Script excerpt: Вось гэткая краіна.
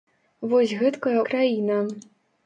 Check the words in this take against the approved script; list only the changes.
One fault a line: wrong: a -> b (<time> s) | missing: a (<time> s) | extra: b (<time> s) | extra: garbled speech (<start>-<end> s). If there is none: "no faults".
no faults